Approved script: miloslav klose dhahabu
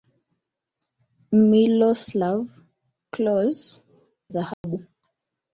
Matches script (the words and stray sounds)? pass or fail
fail